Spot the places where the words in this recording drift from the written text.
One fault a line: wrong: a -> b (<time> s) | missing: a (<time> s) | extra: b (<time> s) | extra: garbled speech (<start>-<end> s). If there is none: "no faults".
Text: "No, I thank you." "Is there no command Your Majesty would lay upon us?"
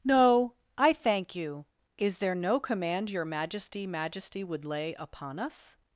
extra: Majesty (3.9 s)